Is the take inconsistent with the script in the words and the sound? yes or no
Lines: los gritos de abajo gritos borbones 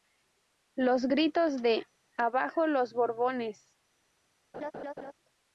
yes